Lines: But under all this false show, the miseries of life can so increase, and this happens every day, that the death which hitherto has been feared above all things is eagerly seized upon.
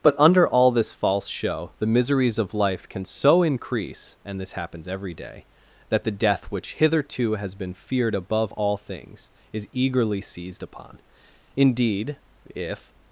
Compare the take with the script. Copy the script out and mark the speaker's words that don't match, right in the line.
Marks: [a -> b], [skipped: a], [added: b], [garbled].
But under all this false show, the miseries of life can so increase, and this happens every day, that the death which hitherto has been feared above all things is eagerly seized upon. [added: Indeed if]